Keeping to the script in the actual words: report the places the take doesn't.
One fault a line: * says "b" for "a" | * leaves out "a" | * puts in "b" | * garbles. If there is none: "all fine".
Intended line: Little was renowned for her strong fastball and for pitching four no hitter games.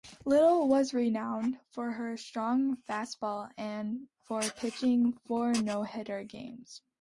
all fine